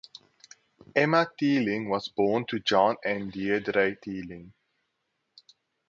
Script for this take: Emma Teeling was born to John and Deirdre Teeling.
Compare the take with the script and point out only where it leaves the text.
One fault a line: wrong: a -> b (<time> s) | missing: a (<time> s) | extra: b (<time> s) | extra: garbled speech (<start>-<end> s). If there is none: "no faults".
no faults